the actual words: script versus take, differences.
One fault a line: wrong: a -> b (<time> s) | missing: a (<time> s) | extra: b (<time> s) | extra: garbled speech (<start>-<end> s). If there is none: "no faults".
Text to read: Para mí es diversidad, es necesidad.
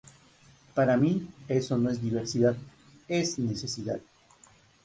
extra: eso no (1.5 s)